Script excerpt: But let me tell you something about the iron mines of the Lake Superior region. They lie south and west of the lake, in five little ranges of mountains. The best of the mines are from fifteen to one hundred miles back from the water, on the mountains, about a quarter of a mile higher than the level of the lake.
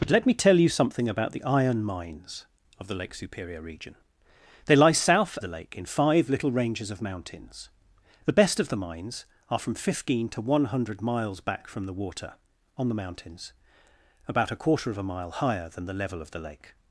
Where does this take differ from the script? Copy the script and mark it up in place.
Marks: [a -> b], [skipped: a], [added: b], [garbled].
But let me tell you something about the iron mines of the Lake Superior region. They lie south [skipped: and west of] the lake, in five little ranges of mountains. The best of the mines are from fifteen to one hundred miles back from the water, on the mountains, about a quarter of a mile higher than the level of the lake.